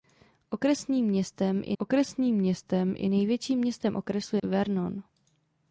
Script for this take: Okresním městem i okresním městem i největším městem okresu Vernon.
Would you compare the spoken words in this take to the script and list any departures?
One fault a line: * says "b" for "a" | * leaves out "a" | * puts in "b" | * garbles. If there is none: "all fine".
all fine